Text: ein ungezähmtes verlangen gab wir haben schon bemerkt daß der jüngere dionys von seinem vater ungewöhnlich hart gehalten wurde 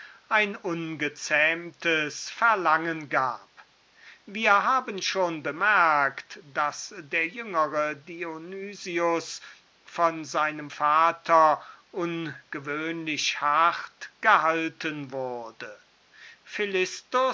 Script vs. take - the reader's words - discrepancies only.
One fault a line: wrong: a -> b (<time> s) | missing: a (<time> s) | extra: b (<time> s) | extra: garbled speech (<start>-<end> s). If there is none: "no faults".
no faults